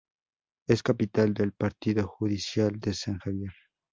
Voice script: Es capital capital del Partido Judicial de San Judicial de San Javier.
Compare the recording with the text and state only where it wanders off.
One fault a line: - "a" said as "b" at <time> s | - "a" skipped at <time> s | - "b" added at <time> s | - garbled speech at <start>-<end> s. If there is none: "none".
- "capital" skipped at 1.3 s
- "Judicial de San" skipped at 3.2 s